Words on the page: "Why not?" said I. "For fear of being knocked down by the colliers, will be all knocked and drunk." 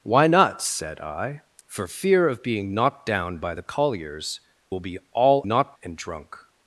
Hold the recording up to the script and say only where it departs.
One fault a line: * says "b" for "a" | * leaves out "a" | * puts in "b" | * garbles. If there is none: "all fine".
all fine